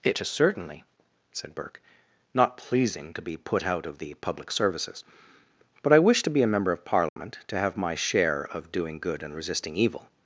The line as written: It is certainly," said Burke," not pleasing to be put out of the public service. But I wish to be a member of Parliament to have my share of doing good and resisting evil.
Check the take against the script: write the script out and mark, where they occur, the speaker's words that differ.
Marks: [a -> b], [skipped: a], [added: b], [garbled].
It is certainly," said Burke," not pleasing to be put out of the public [service. -> services] But I wish to be a member of Parliament to have my share of doing good and resisting evil.